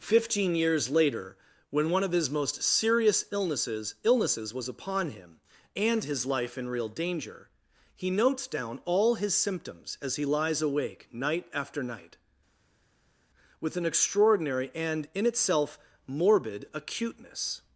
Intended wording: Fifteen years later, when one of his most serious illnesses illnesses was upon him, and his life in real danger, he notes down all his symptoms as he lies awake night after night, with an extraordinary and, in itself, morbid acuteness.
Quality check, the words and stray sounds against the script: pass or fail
pass